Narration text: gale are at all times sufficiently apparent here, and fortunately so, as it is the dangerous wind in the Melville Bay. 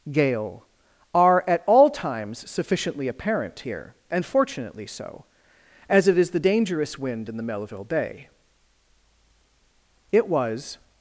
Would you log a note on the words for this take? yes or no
yes